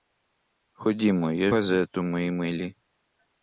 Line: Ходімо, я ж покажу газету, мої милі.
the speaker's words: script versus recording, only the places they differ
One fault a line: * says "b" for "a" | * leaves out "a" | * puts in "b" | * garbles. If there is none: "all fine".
* leaves out "ж покажу"